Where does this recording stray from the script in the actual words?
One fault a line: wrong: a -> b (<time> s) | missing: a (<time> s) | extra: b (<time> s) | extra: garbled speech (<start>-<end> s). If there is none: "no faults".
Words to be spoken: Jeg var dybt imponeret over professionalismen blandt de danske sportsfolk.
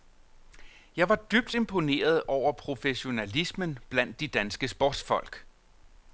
no faults